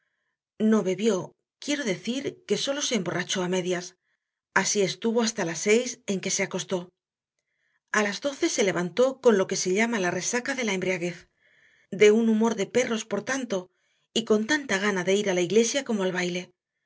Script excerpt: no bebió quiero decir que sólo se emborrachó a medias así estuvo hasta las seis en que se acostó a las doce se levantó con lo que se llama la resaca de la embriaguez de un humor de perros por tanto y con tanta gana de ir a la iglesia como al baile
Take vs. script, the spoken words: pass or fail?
pass